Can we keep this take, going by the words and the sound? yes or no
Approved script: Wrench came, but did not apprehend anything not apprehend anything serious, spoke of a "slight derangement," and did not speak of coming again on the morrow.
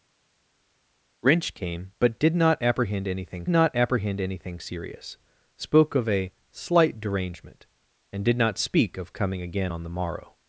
yes